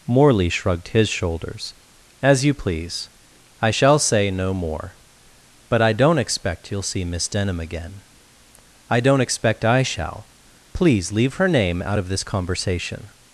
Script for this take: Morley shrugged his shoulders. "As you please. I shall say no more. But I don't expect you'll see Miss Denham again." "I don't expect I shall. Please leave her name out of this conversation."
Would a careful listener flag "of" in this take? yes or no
no